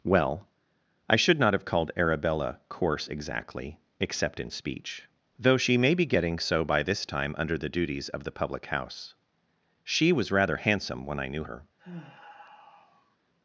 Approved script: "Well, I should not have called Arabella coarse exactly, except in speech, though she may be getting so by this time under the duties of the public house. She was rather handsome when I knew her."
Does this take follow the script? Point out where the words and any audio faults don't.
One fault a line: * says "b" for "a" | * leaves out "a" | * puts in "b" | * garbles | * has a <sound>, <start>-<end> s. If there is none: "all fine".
* has a sigh, 11.8-13.2 s